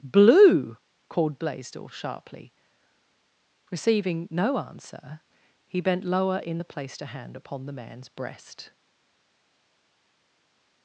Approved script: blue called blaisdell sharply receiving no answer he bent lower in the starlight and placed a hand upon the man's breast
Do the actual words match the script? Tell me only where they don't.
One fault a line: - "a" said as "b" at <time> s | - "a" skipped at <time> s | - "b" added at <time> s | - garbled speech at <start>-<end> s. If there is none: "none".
- "starlight and" skipped at 6.6 s